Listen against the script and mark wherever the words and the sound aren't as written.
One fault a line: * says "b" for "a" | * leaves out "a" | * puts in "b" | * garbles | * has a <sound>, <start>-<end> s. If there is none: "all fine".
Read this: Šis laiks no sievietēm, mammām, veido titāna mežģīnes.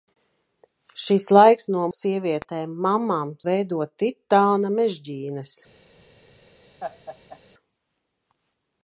* has a laugh, 6.8-7.4 s